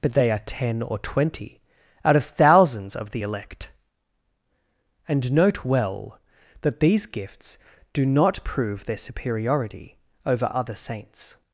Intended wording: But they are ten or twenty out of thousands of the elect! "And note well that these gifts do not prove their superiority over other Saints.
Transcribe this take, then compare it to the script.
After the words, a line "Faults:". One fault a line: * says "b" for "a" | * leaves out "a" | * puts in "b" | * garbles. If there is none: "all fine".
But they are ten or twenty out of thousands of the elect! "And note well that these gifts do not prove their superiority over other Saints.
Faults:
all fine